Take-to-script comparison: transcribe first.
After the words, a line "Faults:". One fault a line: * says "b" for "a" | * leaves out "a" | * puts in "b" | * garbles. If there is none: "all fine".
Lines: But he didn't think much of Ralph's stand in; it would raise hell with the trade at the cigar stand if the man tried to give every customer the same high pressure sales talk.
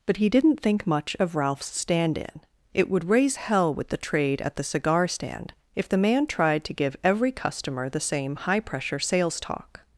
But he didn't think much of Ralph's stand in; it would raise hell with the trade at the cigar stand if the man tried to give every customer the same high pressure sales talk.
Faults:
all fine